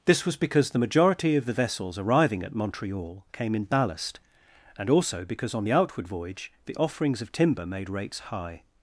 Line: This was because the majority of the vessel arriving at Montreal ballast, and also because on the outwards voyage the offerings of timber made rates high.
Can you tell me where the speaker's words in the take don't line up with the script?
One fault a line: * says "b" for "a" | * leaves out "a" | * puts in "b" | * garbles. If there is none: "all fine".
* says "vessels" for "vessel"
* puts in "came in"
* says "outward" for "outwards"